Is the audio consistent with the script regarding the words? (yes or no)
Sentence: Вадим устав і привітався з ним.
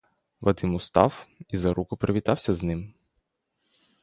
no